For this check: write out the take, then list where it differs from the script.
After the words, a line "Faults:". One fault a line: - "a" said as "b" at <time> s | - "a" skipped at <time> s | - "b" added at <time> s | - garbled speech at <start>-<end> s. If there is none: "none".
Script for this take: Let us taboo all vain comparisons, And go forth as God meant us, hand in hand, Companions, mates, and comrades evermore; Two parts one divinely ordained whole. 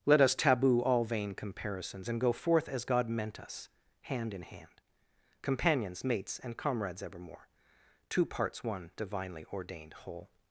Let us taboo all vain comparisons, And go forth as God meant us, hand in hand, Companions, mates, and comrades evermore; Two parts one divinely ordained whole.
Faults:
none